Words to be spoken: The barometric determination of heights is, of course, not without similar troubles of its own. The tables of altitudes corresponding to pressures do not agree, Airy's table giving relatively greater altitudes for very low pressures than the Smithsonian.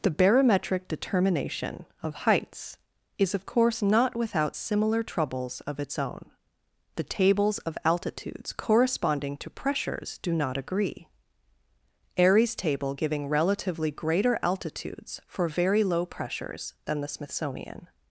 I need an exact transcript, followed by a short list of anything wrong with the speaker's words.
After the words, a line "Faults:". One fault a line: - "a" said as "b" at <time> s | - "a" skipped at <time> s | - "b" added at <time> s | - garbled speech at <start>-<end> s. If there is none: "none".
The barometric determination of heights is, of course, not without similar troubles of its own. The tables of altitudes corresponding to pressures do not agree, Airy's table giving relatively greater altitudes for very low pressures than the Smithsonian.
Faults:
none